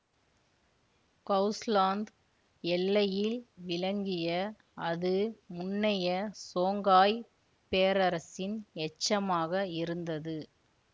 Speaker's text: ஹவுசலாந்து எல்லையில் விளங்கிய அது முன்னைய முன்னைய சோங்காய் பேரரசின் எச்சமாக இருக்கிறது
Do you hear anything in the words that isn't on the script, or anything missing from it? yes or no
yes